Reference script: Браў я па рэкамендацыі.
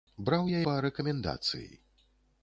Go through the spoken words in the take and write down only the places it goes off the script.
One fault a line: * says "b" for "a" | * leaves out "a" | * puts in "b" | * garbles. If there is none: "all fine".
all fine